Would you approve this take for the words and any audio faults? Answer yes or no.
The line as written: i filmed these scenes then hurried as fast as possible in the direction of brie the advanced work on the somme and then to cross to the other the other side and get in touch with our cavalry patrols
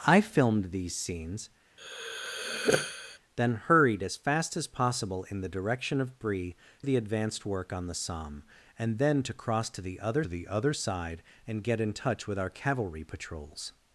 no